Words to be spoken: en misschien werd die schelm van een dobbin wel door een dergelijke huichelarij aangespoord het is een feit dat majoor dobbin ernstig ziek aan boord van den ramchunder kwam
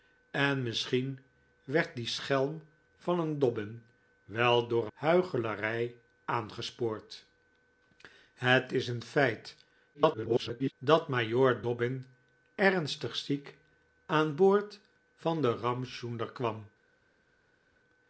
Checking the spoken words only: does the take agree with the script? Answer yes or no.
no